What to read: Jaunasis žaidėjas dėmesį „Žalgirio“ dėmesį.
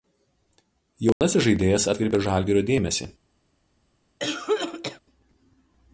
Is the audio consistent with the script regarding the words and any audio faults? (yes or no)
no